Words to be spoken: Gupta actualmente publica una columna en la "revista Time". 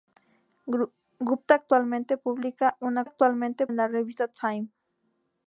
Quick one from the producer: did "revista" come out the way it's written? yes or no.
yes